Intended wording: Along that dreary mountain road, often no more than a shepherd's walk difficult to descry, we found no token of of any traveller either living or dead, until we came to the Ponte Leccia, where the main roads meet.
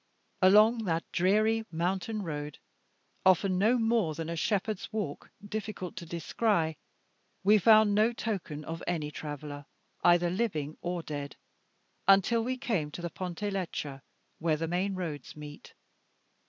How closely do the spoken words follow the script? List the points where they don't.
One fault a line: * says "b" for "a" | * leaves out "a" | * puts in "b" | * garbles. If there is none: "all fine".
* leaves out "of"